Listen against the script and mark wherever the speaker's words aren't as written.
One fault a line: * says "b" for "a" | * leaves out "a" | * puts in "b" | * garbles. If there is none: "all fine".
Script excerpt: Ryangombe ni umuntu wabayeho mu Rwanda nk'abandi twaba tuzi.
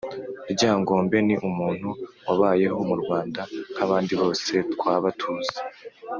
* puts in "bose"